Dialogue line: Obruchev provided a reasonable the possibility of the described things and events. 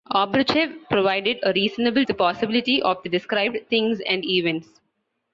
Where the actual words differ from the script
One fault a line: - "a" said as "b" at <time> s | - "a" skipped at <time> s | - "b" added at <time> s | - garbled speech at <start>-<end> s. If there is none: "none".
none